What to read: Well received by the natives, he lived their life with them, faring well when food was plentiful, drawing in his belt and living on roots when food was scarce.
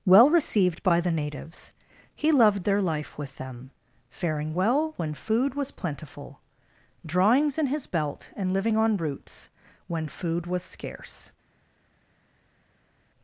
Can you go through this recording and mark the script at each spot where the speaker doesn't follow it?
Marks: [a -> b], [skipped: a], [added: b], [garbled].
Well received by the natives, he [lived -> loved] their life with them, faring well when food was plentiful, [drawing -> drawings] in his belt and living on roots when food was scarce.